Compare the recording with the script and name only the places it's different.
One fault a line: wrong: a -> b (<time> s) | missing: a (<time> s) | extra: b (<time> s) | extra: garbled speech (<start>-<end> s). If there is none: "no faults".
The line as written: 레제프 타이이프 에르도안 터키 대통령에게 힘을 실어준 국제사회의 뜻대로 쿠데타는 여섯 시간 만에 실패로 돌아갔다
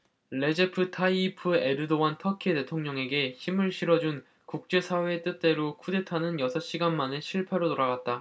no faults